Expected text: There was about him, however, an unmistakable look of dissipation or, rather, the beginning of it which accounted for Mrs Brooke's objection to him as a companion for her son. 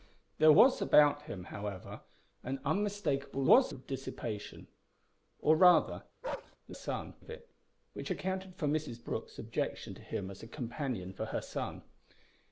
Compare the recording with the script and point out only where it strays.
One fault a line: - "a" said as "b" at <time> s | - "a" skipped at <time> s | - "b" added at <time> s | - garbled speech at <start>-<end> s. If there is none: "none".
- "look" said as "was" at 3.4 s
- "beginning" said as "son" at 6.7 s